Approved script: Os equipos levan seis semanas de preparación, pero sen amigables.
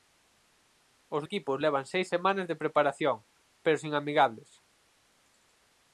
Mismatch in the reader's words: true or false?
false